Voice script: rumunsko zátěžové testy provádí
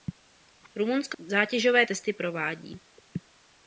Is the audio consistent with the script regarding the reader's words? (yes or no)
yes